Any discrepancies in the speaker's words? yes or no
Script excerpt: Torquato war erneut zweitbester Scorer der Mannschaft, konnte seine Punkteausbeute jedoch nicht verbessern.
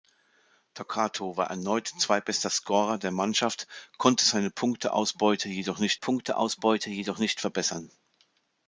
yes